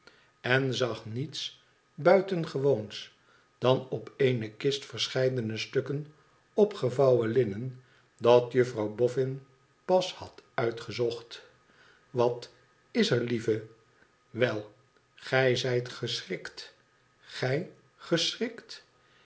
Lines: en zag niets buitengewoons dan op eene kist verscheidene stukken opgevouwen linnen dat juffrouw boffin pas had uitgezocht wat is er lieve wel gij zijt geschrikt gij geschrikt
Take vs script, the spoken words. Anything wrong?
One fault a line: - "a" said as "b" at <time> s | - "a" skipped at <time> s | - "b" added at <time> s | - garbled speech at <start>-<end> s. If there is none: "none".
none